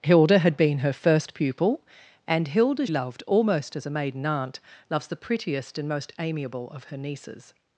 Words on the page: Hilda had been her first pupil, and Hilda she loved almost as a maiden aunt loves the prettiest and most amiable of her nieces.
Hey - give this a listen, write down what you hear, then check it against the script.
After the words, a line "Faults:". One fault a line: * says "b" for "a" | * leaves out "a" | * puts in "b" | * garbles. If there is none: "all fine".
Hilda had been her first pupil, and Hilda loved almost as a maiden aunt loves the prettiest and most amiable of her nieces.
Faults:
* leaves out "she"